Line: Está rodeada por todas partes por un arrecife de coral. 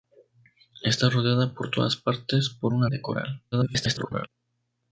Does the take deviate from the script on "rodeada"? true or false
false